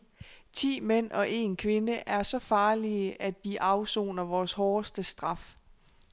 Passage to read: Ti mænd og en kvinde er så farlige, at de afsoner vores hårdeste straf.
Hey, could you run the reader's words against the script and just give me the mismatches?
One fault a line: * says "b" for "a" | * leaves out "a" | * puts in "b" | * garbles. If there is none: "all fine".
all fine